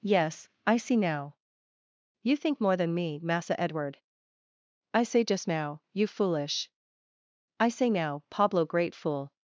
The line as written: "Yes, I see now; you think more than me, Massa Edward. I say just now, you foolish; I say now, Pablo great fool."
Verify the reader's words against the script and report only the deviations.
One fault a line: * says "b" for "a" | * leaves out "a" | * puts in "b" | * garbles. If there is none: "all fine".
all fine